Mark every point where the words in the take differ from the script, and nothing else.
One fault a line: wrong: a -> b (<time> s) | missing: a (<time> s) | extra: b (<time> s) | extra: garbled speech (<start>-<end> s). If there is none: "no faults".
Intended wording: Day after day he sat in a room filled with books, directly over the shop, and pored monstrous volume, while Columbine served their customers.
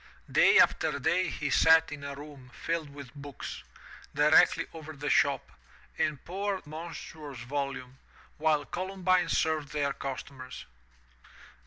no faults